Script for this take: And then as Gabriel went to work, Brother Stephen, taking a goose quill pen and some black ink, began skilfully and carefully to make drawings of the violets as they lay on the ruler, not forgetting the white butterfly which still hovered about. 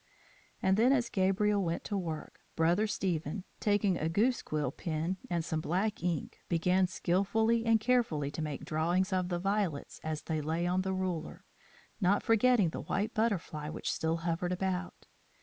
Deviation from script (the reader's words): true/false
false